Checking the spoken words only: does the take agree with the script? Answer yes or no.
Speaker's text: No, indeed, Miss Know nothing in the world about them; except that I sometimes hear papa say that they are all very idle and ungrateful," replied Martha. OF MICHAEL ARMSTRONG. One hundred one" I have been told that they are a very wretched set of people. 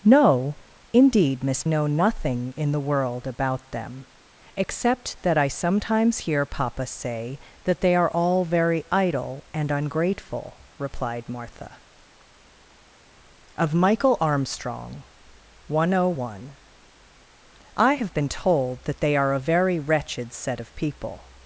yes